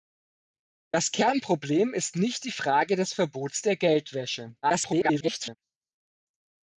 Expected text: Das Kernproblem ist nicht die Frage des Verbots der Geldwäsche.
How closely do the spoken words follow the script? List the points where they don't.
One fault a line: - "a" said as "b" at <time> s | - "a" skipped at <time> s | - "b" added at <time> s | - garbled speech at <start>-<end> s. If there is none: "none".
- garbled speech at 4.6-5.6 s